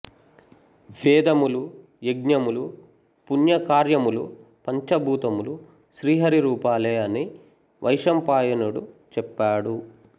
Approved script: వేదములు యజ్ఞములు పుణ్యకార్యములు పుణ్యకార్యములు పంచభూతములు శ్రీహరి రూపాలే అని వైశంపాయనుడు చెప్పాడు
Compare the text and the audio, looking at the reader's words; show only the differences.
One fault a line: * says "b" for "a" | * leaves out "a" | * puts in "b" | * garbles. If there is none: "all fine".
* leaves out "పుణ్యకార్యములు"